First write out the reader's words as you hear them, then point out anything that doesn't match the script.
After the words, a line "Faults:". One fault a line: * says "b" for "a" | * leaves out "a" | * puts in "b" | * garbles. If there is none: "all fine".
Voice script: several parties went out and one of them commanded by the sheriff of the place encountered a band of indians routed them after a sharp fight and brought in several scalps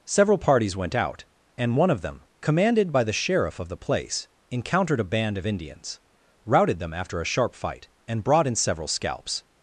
several parties went out and one of them commanded by the sheriff of the place encountered a band of indians routed them after a sharp fight and brought in several scalps
Faults:
all fine